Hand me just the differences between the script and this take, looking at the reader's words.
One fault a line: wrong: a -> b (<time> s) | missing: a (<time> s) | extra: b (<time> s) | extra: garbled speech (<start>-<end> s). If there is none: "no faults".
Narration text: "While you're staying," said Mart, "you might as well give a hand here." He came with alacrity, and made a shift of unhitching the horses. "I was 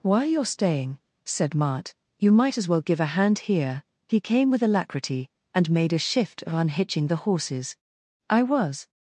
no faults